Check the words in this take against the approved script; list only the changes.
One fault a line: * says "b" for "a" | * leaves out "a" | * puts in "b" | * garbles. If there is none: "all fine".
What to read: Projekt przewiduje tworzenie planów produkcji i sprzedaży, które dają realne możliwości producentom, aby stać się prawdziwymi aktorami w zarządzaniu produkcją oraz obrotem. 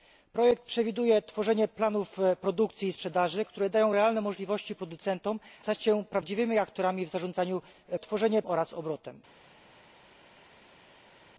* leaves out "aby"
* says "tworzenie" for "produkcją"